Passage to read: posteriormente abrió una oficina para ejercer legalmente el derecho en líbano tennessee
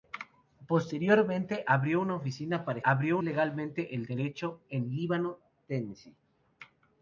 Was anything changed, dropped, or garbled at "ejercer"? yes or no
yes